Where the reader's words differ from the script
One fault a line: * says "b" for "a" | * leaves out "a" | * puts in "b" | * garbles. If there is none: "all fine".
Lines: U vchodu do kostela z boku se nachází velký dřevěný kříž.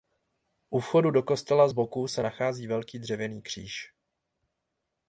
all fine